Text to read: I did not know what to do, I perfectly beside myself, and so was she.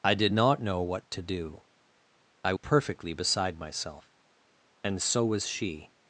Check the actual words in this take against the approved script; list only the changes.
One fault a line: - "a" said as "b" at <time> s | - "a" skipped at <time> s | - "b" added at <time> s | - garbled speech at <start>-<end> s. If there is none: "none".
none